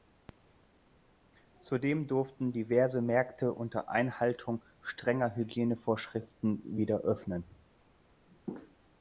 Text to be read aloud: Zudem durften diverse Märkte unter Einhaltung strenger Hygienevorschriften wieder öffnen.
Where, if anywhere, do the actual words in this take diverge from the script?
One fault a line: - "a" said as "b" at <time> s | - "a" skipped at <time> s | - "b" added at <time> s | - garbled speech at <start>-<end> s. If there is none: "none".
none